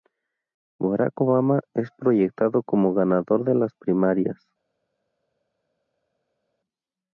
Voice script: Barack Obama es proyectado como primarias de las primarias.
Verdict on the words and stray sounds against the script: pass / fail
fail